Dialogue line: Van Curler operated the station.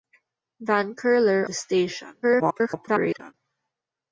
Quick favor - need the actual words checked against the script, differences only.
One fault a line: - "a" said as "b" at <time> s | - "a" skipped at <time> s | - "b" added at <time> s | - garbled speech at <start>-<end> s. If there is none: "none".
- "operated" skipped at 1.5 s
- garbled speech at 2.2-3.3 s